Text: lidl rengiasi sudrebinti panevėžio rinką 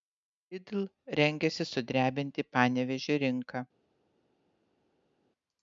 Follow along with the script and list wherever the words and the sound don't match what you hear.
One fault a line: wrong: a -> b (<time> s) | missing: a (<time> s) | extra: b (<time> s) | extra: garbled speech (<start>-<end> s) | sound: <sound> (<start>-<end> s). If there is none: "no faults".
no faults